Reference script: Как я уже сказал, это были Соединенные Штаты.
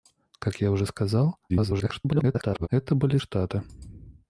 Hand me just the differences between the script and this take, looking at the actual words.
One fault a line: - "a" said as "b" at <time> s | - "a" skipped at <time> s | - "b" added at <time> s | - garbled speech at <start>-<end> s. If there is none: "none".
- garbled speech at 1.5-2.7 s
- "Соединенные" skipped at 3.2 s